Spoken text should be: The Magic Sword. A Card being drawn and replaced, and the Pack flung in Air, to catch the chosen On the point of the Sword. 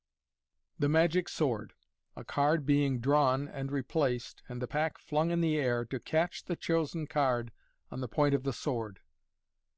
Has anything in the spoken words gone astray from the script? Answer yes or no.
yes